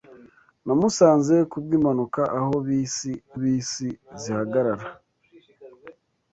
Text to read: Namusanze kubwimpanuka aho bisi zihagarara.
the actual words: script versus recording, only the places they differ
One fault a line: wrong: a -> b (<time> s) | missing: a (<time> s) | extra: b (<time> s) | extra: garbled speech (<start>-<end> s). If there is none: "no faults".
extra: bisi (3.4 s)